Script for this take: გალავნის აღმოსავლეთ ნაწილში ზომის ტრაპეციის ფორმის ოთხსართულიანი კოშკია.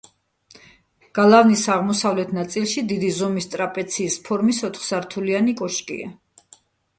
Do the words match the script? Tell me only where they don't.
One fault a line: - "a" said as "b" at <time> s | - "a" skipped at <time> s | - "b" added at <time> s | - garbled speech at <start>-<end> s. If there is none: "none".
- "დიდი" added at 2.9 s